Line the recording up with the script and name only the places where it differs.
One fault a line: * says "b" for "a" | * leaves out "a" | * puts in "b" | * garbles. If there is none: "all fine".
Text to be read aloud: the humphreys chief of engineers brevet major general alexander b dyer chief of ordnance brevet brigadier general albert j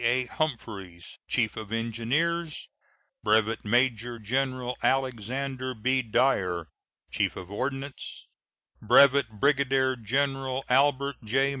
* says "a" for "the"